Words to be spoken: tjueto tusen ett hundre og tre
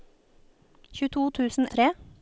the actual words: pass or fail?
fail